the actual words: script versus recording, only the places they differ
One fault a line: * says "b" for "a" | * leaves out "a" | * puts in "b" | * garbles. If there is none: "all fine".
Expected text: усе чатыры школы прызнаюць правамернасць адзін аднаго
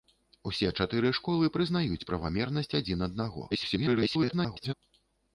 * garbles